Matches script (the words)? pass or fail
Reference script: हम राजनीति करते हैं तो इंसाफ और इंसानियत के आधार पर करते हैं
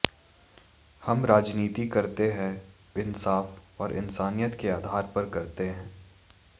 fail